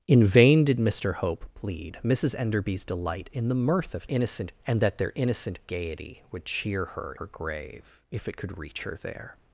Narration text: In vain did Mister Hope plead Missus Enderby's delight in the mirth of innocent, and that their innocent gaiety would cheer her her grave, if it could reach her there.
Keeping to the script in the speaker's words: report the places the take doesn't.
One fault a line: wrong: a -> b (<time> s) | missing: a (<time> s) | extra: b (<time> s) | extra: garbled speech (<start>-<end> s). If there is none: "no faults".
no faults